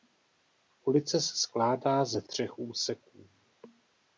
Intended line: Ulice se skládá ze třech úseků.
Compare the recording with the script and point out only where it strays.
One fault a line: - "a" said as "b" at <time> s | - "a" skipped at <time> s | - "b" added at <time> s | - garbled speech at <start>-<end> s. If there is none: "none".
none